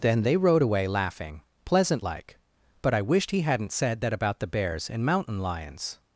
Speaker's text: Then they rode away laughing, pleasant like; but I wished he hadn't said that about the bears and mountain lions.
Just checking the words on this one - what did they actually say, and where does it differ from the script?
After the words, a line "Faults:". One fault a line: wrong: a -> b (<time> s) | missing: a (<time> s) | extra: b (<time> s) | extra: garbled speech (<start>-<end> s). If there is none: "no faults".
Then they rode away laughing, pleasant like; but I wished he hadn't said that about the bears and mountain lions.
Faults:
no faults